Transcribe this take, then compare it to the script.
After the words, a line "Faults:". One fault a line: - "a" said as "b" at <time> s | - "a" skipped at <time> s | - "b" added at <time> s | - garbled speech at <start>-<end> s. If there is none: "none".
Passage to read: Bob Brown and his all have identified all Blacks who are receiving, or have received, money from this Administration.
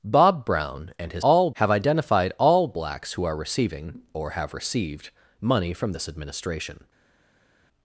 Bob Brown and his all have identified all Blacks who are receiving, or have received, money from this Administration.
Faults:
none